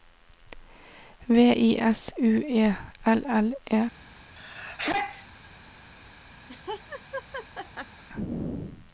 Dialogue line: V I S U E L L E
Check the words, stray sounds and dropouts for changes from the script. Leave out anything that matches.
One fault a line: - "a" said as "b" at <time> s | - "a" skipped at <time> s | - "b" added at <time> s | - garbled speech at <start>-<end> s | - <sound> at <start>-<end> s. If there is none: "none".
- sneeze at 4.4-5.3 s
- laugh at 6.5-8.0 s